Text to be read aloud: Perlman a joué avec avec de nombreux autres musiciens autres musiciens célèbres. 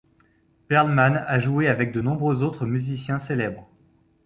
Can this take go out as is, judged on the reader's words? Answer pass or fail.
fail